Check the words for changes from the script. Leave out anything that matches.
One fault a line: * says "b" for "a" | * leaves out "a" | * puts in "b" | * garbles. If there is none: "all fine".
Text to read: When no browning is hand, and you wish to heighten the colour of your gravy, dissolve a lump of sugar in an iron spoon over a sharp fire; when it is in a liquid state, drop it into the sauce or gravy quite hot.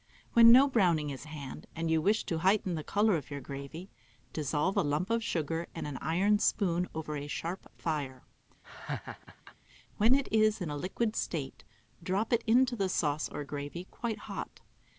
all fine